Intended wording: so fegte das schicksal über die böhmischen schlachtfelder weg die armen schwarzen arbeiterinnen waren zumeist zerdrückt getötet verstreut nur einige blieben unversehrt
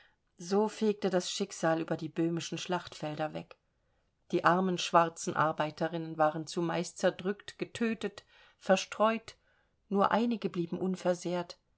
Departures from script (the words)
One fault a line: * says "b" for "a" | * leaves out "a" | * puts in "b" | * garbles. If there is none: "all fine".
all fine